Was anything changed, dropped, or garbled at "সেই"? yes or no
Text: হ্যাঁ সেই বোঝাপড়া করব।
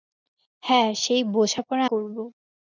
no